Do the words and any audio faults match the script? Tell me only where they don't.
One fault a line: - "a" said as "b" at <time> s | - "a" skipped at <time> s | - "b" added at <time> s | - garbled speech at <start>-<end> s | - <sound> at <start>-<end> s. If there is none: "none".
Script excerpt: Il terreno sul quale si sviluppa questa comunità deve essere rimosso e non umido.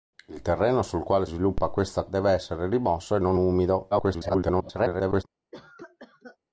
- "si" skipped at 1.2 s
- "comunità" skipped at 2.0 s
- garbled speech at 3.9-5.2 s
- cough at 5.5-6.4 s